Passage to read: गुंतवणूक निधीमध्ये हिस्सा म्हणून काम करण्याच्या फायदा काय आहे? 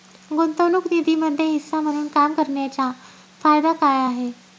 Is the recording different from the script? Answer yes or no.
no